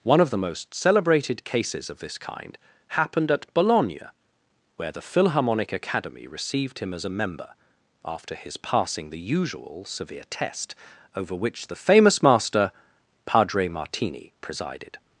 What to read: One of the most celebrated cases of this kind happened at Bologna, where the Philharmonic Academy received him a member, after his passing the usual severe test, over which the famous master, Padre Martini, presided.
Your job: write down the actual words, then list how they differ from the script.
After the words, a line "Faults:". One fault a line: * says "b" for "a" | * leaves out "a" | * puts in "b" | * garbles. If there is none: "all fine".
One of the most celebrated cases of this kind happened at Bologna, where the Philharmonic Academy received him as a member, after his passing the usual severe test, over which the famous master, Padre Martini, presided.
Faults:
* puts in "as"